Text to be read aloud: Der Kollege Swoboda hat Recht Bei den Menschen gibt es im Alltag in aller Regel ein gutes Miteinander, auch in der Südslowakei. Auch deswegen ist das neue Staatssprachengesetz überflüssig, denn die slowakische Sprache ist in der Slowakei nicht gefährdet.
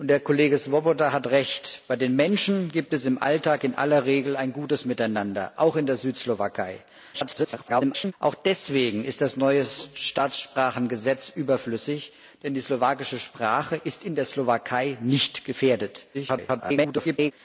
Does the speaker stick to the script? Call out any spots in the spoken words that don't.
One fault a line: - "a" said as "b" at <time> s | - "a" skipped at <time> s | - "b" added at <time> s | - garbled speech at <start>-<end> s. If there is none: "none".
- garbled speech at 7.1-8.1 s
- garbled speech at 16.1-17.3 s